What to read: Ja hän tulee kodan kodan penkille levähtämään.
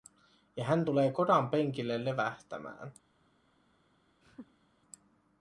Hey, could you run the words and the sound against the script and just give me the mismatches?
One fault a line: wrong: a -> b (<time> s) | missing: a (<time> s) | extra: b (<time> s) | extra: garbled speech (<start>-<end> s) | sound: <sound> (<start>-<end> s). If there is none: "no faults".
missing: kodan (1.5 s)
sound: laugh (4.2-4.7 s)